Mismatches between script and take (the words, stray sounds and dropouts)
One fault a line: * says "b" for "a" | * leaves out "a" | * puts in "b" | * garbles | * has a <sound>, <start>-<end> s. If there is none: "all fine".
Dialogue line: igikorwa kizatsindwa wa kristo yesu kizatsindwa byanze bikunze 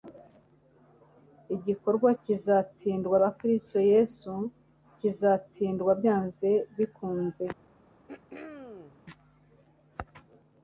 * has a throat clearing, 8.1-9.0 s